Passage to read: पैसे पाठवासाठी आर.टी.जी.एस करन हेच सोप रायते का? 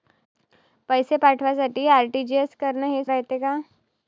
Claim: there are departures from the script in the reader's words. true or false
true